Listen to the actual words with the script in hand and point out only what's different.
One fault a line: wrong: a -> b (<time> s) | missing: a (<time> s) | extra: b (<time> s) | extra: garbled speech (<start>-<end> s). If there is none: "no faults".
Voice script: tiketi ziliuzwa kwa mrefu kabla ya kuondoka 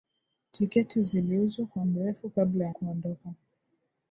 no faults